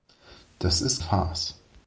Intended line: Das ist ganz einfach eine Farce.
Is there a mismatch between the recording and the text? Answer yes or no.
yes